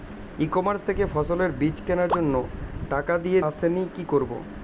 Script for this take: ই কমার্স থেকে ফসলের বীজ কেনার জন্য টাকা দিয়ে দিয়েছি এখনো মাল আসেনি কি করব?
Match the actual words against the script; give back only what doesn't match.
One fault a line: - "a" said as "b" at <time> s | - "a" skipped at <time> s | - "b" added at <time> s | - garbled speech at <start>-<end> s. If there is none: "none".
- "দিয়েছি এখনো মাল" skipped at 3.4 s